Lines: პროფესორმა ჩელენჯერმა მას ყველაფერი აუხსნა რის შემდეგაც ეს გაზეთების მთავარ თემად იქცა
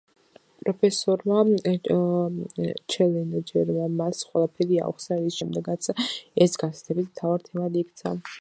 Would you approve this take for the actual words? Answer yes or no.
yes